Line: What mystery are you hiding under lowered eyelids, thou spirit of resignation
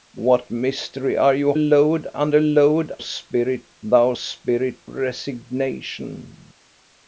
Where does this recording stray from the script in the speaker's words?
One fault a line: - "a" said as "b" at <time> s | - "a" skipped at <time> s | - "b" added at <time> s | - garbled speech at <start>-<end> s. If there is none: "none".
- "hiding" said as "lowered" at 1.6 s
- "eyelids" said as "spirit" at 3.0 s
- "of" skipped at 4.8 s